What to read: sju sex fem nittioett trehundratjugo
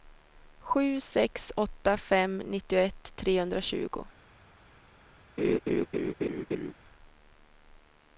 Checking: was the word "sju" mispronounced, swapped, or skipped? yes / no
no